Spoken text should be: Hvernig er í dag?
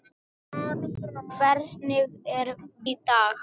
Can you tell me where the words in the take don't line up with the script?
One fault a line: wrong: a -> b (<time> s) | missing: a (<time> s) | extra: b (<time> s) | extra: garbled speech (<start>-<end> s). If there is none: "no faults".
no faults